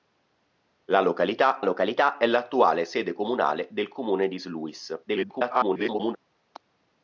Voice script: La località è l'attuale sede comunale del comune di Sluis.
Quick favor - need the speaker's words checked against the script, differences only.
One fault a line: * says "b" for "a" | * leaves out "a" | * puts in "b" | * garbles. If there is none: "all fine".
* puts in "località"
* garbles